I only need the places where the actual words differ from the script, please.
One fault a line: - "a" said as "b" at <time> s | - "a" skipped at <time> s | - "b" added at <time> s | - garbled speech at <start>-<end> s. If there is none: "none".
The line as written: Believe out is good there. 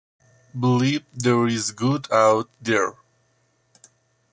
- "out" said as "there" at 1.1 s
- "out" added at 2.1 s